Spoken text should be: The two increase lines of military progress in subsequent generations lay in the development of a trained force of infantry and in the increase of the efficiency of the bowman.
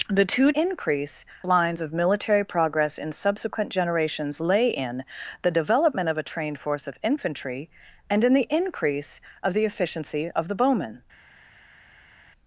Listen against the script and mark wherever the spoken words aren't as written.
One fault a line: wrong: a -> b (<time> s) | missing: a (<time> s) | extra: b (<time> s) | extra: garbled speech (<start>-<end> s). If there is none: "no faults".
no faults